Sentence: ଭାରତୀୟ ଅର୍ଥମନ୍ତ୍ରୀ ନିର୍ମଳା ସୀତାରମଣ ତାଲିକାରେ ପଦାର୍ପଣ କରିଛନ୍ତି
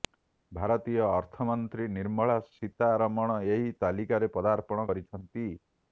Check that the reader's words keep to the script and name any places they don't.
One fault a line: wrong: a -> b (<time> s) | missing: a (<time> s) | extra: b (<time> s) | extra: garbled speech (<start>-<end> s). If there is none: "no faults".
extra: ଏହି (3.5 s)